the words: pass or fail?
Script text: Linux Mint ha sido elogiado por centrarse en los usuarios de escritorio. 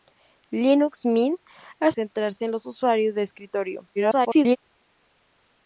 fail